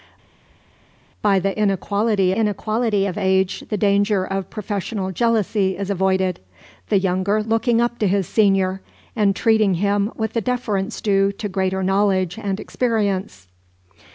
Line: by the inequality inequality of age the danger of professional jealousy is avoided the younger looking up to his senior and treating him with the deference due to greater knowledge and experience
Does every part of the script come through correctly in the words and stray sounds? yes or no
yes